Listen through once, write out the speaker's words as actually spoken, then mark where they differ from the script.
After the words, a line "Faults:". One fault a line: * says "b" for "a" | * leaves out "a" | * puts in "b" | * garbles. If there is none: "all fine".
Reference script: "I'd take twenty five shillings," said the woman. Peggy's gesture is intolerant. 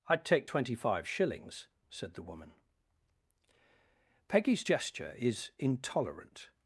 "I'd take twenty five shillings," said the woman. Peggy's gesture is intolerant.
Faults:
all fine